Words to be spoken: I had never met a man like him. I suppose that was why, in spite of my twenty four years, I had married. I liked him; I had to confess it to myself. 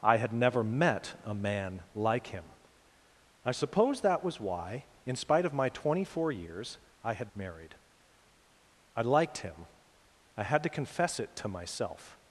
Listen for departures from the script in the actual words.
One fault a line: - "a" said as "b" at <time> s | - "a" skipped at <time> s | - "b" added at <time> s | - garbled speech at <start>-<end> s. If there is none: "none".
none